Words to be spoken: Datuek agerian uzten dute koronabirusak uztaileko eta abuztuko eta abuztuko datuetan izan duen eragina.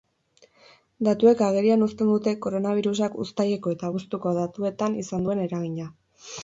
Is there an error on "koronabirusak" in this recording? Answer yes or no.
no